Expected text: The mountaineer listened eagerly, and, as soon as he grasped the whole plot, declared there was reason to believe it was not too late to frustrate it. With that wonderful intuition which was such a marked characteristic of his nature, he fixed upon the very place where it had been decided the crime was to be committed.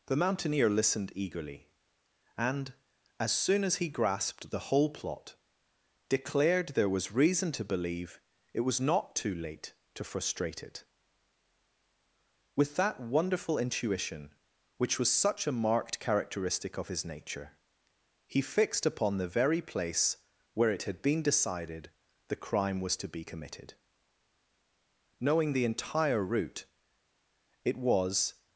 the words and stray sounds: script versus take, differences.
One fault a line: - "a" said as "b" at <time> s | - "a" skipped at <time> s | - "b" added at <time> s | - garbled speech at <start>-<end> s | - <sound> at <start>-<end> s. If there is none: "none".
- "Knowing the entire route it was" added at 25.2 s